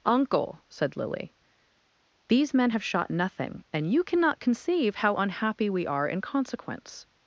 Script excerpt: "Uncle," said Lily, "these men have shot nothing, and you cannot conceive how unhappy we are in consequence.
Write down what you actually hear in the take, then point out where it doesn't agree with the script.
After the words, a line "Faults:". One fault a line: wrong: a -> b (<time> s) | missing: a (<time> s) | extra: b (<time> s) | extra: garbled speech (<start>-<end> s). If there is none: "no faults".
"Uncle," said Lily, "these men have shot nothing, and you cannot conceive how unhappy we are in consequence.
Faults:
no faults